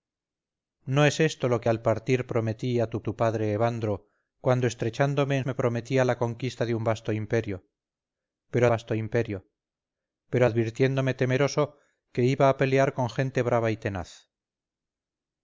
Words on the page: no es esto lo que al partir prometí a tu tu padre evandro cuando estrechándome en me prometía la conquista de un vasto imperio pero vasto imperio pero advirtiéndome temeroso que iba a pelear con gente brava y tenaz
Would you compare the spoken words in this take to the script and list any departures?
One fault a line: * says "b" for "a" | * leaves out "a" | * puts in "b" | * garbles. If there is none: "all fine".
all fine